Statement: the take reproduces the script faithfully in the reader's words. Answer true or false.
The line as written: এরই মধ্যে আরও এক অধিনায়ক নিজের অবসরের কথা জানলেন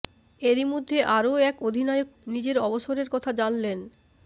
true